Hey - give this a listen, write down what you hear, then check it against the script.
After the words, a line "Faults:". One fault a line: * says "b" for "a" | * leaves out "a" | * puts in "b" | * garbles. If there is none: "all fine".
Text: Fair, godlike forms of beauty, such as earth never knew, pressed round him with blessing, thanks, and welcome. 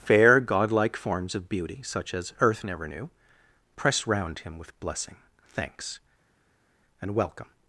Fair, godlike forms of beauty, such as earth never knew, pressed round him with blessing, thanks, and welcome.
Faults:
all fine